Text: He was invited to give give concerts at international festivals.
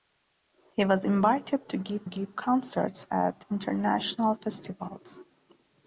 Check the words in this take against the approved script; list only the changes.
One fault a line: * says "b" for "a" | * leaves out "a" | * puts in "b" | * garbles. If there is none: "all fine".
all fine